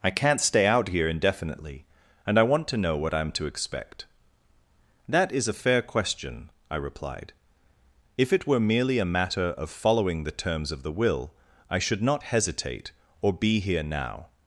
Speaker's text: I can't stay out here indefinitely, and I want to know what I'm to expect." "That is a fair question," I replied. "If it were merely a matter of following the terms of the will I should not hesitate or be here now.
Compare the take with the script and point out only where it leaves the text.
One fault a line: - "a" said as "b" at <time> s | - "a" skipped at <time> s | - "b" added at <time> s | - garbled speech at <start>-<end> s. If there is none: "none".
none